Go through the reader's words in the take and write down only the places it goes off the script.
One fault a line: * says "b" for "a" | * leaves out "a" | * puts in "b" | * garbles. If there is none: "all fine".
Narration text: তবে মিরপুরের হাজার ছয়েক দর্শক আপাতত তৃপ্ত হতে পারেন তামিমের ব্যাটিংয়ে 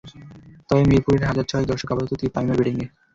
* leaves out "হতে পারেন"